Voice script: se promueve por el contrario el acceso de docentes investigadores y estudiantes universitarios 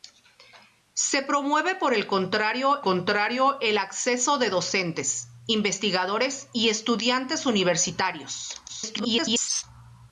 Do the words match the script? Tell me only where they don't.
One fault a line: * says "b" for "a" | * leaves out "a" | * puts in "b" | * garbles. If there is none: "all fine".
* puts in "contrario"
* garbles